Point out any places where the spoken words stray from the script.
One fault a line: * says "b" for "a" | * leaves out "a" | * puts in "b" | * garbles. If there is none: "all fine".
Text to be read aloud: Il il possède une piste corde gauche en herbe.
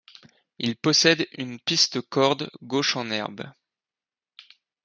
* leaves out "il"